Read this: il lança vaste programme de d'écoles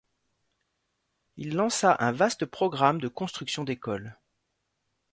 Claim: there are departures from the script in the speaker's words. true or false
true